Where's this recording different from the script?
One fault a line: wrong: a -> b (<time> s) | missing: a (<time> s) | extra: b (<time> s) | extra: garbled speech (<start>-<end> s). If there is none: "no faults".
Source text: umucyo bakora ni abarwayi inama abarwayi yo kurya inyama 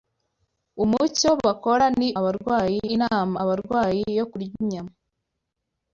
no faults